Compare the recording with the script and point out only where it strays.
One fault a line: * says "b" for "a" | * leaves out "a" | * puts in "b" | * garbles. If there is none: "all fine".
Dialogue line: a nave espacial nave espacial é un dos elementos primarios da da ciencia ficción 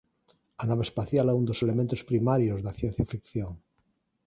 * leaves out "nave espacial"
* leaves out "da"